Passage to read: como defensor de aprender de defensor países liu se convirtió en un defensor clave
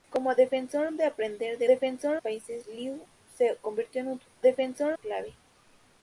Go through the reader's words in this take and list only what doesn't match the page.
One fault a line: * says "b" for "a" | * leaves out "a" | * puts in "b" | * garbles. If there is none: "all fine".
all fine